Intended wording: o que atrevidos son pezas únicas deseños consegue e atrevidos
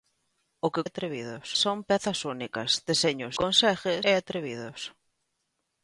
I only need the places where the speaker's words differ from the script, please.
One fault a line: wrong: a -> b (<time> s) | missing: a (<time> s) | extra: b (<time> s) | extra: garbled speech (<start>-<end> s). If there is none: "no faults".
no faults